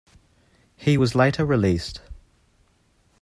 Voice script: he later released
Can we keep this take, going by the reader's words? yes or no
no